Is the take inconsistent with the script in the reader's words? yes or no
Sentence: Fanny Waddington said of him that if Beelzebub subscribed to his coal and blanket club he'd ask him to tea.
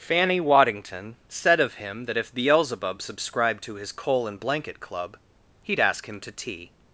no